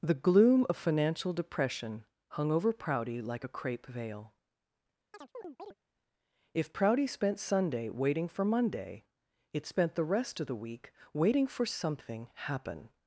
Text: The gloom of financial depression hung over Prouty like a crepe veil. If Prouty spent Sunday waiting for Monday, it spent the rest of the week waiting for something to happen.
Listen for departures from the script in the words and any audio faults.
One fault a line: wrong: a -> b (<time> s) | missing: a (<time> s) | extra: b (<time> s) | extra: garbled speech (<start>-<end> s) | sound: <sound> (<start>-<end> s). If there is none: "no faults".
sound: chirp (5.1-5.7 s)
missing: to (12.3 s)